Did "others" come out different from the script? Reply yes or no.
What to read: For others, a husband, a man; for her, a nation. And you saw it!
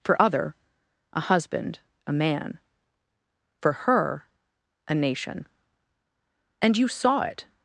yes